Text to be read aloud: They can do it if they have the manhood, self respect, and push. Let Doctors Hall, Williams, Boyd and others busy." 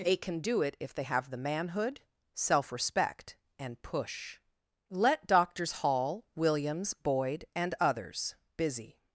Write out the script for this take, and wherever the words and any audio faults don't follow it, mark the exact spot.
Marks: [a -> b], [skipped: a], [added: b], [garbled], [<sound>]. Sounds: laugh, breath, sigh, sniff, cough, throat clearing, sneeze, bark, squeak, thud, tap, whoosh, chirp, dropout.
They can do it if they have the manhood, self respect, and push. Let Doctors Hall, Williams, Boyd and others busy."